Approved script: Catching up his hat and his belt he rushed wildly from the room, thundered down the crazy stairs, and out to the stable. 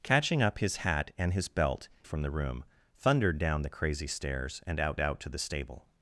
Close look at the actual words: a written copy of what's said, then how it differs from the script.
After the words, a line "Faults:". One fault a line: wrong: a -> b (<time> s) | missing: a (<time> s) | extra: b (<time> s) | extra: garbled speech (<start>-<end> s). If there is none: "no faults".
Catching up his hat and his belt from the room, thundered down the crazy stairs, and out out to the stable.
Faults:
missing: he rushed wildly (1.9 s)
extra: out (5.0 s)